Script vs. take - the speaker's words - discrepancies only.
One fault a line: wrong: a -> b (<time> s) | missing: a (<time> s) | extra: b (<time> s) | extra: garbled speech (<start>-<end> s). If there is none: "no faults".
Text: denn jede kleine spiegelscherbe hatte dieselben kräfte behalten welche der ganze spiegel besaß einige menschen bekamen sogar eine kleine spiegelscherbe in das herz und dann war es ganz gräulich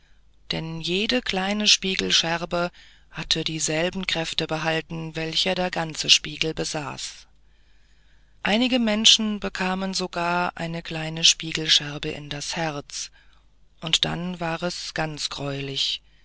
no faults